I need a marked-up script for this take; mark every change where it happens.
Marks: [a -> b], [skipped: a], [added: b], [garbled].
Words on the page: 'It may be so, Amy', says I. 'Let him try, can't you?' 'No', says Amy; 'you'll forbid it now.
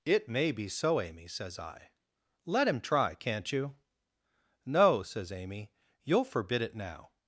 'It may be so, Amy', says I. 'Let him try, can't you?' 'No', says Amy; 'you'll forbid it now.